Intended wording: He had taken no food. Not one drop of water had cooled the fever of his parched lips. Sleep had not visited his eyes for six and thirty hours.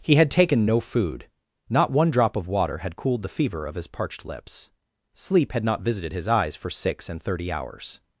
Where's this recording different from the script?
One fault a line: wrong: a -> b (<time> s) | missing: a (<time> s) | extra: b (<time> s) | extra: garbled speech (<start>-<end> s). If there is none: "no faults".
no faults